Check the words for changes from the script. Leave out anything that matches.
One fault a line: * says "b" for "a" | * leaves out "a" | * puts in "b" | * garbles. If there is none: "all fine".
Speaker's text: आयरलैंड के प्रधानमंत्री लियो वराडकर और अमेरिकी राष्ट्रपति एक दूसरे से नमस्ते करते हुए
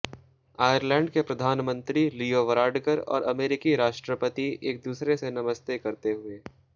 all fine